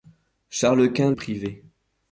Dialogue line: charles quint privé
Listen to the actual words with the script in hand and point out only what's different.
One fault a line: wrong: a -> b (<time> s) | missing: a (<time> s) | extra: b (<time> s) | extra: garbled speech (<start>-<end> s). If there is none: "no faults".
no faults